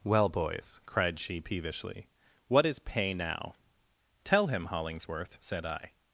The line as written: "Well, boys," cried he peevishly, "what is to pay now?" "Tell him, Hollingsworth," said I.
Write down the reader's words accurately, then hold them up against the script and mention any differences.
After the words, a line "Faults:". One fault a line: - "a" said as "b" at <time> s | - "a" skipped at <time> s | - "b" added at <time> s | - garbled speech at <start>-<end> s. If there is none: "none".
"Well, boys," cried she peevishly, "what is pay now?" "Tell him, Hollingsworth," said I.
Faults:
- "he" said as "she" at 1.2 s
- "to" skipped at 2.8 s